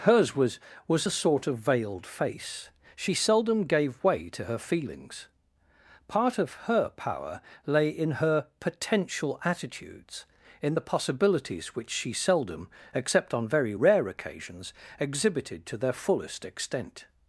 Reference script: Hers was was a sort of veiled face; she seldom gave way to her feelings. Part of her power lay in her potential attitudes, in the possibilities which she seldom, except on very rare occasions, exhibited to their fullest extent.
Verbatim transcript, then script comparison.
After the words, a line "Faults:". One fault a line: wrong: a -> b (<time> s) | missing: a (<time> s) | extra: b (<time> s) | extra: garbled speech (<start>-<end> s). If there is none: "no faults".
Hers was was a sort of veiled face; she seldom gave way to her feelings. Part of her power lay in her potential attitudes, in the possibilities which she seldom, except on very rare occasions, exhibited to their fullest extent.
Faults:
no faults